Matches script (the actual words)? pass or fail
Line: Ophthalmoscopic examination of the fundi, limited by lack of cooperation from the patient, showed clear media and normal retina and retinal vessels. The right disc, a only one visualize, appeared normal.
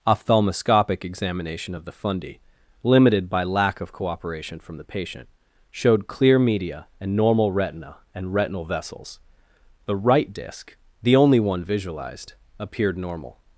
fail